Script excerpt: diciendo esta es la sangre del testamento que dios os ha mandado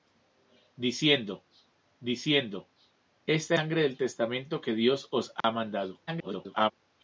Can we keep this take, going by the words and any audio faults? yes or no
no